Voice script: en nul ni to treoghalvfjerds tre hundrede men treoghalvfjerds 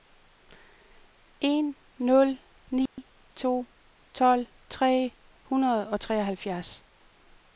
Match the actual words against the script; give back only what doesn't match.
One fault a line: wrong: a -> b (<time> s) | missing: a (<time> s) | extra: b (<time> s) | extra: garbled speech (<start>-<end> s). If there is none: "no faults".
wrong: treoghalvfjerds -> tolv (4.1 s)
wrong: men -> og (5.9 s)